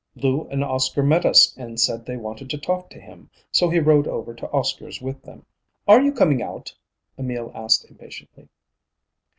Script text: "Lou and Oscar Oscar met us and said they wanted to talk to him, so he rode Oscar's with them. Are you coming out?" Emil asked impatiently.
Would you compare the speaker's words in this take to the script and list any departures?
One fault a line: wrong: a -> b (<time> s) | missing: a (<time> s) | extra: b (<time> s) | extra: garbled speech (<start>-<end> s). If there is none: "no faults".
missing: Oscar (1.0 s)
extra: over to (4.1 s)